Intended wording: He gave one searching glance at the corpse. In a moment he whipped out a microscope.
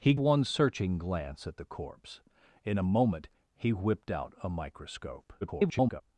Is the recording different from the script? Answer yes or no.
yes